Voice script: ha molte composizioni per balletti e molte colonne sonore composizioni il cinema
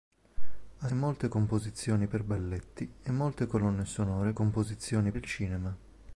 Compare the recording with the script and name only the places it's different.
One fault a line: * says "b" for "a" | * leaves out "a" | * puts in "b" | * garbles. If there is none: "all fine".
all fine